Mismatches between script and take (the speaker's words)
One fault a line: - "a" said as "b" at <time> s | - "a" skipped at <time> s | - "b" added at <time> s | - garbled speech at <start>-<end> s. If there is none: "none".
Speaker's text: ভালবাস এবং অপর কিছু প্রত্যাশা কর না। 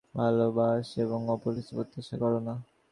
none